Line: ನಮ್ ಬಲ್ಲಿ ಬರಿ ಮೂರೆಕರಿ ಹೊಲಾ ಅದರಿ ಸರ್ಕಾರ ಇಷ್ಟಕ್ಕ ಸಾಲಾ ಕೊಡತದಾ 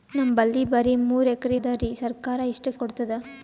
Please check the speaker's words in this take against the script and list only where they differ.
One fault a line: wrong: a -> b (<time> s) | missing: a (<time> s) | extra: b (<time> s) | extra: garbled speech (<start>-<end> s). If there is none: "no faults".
missing: ಹೊಲಾ (1.6 s)
missing: ಸಾಲಾ (2.8 s)